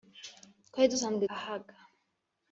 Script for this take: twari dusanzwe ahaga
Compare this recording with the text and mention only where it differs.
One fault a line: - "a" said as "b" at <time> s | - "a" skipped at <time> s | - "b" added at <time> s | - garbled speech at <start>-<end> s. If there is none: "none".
none